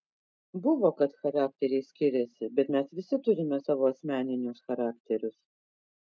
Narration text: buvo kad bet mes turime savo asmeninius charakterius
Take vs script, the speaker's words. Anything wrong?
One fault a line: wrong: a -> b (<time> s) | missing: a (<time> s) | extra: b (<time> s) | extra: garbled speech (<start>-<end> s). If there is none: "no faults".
extra: charakteriai skiriasi (1.2 s)
extra: visi (3.0 s)